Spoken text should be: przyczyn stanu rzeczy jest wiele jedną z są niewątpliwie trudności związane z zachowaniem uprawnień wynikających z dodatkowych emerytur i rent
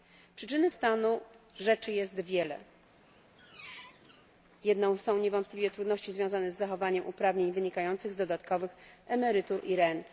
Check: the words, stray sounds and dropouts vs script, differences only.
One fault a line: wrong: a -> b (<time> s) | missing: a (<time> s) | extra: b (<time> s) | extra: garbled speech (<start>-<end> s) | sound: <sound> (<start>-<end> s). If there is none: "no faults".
sound: squeak (3.0-4.3 s)